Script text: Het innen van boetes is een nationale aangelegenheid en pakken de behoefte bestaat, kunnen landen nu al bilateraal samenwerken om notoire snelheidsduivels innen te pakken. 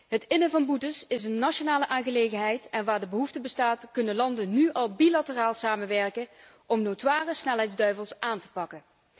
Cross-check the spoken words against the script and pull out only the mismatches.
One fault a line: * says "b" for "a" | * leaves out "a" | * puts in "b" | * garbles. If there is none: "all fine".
* says "waar" for "pakken"
* says "aan" for "innen"